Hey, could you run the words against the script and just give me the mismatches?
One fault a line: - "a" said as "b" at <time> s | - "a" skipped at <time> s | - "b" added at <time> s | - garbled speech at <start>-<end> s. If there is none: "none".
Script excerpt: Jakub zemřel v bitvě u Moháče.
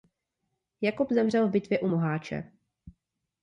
none